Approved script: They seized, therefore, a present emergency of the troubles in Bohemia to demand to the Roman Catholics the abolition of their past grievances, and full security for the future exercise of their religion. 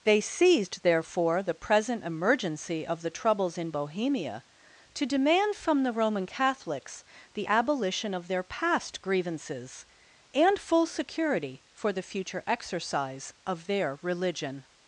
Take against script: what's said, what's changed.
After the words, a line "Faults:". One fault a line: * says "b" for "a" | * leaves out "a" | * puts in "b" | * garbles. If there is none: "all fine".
They seized, therefore, the present emergency of the troubles in Bohemia to demand from the Roman Catholics the abolition of their past grievances, and full security for the future exercise of their religion.
Faults:
* says "the" for "a"
* says "from" for "to"